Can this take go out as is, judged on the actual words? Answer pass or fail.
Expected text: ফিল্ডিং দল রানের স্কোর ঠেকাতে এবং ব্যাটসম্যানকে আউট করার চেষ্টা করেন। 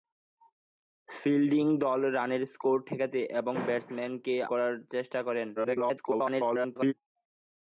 fail